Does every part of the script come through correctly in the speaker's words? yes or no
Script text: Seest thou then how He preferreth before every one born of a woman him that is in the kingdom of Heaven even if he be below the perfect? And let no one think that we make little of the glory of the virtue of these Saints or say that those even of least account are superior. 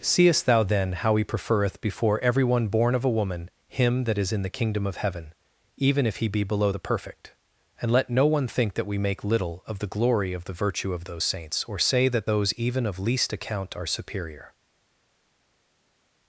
no